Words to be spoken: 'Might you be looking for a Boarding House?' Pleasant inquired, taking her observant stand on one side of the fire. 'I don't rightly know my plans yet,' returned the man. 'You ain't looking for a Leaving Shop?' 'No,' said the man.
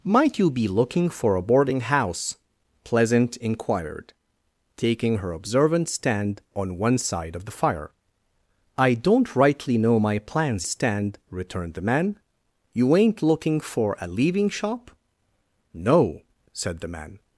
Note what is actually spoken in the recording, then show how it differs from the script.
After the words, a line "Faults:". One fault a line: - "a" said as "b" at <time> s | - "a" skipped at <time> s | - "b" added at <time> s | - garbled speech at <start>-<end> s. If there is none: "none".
'Might you be looking for a Boarding House?' Pleasant inquired, taking her observant stand on one side of the fire. 'I don't rightly know my plans stand,' returned the man. 'You ain't looking for a Leaving Shop?' 'No,' said the man.
Faults:
- "yet" said as "stand" at 10.6 s